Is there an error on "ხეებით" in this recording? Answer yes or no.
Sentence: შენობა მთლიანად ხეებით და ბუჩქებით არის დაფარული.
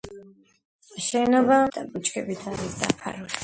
yes